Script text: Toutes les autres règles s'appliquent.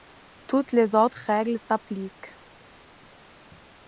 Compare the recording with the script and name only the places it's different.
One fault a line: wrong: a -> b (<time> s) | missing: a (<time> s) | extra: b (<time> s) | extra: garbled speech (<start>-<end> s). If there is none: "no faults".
no faults